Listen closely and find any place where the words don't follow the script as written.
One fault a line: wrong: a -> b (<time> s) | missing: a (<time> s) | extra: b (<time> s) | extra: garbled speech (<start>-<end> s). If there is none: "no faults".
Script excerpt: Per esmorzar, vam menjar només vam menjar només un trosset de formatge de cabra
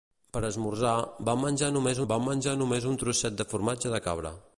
no faults